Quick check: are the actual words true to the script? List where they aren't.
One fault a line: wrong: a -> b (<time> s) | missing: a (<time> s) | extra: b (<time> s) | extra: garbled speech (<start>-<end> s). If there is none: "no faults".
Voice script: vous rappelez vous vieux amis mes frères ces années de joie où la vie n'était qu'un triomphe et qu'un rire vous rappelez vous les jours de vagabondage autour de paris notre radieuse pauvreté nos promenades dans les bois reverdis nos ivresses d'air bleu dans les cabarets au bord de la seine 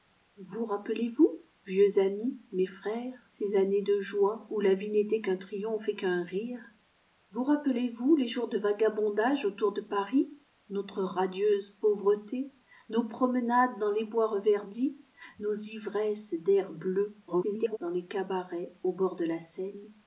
extra: garbled speech (17.3-17.8 s)